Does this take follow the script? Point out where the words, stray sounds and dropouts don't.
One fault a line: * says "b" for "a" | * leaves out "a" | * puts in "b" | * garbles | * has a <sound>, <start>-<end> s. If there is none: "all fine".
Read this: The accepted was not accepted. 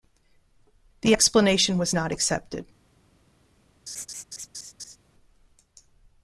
* says "explanation" for "accepted"
* has a laugh, 3.9-5.0 s